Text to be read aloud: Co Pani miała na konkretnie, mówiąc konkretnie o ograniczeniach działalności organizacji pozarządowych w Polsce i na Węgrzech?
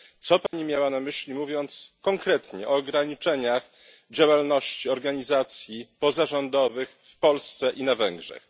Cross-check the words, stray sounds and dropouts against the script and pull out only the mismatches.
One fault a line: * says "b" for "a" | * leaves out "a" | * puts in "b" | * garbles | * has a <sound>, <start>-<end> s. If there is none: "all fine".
* has a dropout, 0.5-0.5 s
* says "myśli" for "konkretnie"